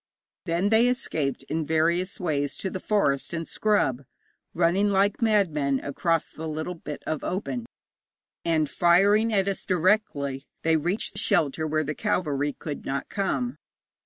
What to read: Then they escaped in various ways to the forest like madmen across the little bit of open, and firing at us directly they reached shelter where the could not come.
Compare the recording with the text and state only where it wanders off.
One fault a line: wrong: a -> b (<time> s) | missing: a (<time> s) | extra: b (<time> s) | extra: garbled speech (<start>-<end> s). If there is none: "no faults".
extra: and scrub running (3.3 s)
extra: cavalry (11.9 s)